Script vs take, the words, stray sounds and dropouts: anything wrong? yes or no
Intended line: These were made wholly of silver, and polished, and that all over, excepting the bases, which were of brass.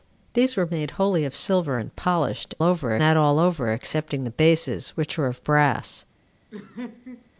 yes